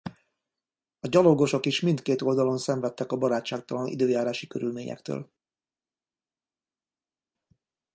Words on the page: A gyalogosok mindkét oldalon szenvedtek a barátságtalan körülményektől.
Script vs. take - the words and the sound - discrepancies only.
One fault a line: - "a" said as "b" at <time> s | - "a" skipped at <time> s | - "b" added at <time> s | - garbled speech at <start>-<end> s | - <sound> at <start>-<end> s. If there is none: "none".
- "is" added at 1.6 s
- "időjárási" added at 3.9 s